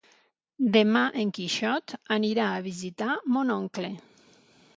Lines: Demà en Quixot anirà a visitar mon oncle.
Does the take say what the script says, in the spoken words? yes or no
yes